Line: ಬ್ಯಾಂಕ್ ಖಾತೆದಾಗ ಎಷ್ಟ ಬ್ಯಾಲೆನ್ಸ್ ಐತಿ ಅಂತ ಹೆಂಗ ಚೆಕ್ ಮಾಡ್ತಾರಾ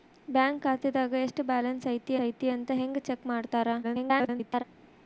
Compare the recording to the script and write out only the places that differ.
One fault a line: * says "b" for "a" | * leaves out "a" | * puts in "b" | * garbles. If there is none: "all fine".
* puts in "ಐತಿ"
* garbles